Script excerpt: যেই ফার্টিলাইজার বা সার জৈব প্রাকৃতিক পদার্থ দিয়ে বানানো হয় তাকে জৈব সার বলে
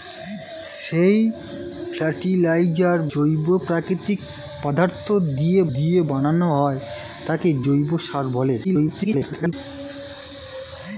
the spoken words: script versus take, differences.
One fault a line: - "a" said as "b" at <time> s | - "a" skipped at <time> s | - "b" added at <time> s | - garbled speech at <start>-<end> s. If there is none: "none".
- "বা সার" skipped at 3.0 s
- "দিয়ে" added at 5.7 s
- garbled speech at 8.6-9.5 s